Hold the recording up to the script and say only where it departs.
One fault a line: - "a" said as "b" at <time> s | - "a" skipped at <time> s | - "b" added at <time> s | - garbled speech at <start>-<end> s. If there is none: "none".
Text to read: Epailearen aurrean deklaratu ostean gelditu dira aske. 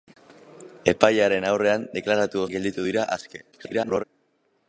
- "ostean" skipped at 2.4 s
- garbled speech at 3.5-4.0 s